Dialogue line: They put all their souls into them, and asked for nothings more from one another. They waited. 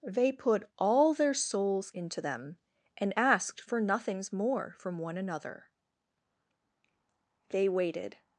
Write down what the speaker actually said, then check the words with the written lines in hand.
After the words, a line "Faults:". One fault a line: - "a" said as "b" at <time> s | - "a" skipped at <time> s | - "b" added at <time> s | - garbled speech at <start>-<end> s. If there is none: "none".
They put all their souls into them, and asked for nothings more from one another. They waited.
Faults:
none